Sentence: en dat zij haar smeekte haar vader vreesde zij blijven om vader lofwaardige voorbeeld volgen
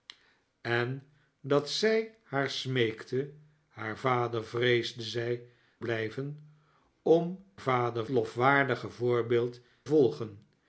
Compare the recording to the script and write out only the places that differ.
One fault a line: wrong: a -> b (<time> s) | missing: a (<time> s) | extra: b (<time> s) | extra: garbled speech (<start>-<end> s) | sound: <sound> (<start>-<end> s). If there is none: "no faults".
no faults